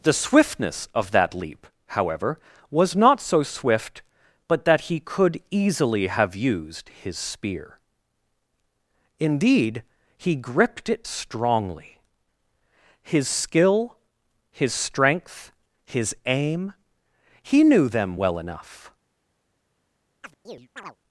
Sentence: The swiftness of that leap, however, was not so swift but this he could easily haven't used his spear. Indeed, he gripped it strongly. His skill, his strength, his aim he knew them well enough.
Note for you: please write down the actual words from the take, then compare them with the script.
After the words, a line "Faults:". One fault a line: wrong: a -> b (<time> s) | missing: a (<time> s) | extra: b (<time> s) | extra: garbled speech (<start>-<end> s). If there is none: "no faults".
The swiftness of that leap, however, was not so swift but that he could easily have used his spear. Indeed, he gripped it strongly. His skill, his strength, his aim he knew them well enough.
Faults:
wrong: this -> that (4.7 s)
wrong: haven't -> have (6.1 s)